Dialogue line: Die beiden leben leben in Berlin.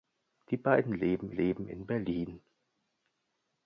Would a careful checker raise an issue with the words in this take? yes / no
no